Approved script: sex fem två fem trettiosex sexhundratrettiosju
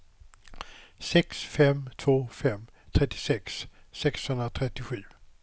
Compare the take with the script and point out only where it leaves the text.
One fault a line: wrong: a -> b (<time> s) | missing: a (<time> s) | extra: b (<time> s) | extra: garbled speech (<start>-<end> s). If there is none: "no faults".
no faults